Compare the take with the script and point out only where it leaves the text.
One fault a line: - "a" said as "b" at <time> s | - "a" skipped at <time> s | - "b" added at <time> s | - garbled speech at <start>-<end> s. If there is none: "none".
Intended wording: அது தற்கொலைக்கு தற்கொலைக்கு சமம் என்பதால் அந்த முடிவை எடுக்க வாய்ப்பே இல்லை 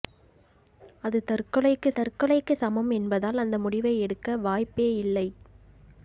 none